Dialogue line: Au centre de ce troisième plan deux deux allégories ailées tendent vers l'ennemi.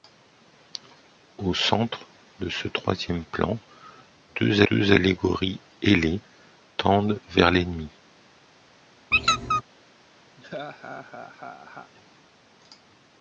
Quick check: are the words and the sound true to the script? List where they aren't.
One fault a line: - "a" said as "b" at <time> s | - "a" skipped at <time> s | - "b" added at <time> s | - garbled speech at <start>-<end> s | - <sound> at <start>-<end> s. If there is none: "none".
- squeak at 9.1-9.6 s
- laugh at 10.4-11.9 s